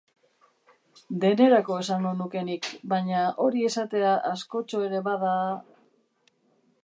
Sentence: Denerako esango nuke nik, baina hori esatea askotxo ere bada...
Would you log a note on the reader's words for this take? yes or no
no